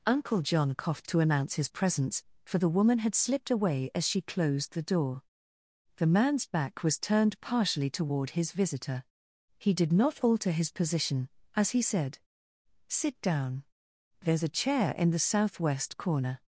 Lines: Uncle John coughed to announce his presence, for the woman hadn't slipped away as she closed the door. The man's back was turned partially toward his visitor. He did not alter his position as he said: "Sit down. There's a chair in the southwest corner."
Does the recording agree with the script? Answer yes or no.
no